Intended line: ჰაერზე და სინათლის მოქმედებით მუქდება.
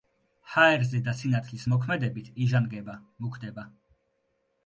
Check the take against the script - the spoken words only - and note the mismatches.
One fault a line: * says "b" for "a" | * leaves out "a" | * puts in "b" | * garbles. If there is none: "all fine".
* puts in "იჟანგება"